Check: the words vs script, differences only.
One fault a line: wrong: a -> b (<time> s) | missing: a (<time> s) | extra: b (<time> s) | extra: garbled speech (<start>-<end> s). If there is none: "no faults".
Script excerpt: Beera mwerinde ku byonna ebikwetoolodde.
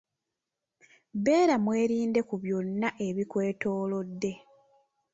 no faults